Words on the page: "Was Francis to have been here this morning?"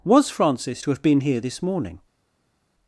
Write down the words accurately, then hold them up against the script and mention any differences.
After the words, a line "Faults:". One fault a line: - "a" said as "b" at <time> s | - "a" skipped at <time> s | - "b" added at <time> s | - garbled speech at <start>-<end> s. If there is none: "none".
"Was Francis to have been here this morning?"
Faults:
none